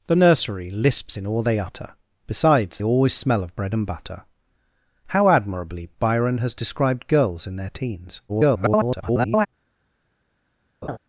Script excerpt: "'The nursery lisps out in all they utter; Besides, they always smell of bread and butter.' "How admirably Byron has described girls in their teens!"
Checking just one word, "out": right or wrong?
wrong